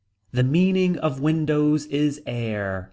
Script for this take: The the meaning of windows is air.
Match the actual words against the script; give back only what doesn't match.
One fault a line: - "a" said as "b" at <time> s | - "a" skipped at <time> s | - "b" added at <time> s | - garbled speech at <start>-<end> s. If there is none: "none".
- "the" skipped at 0.4 s